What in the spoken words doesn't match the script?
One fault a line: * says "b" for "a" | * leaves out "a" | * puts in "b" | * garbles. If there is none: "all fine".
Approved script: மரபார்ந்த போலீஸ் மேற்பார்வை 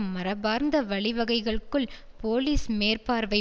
* puts in "வழிவகைகளுக்குள்"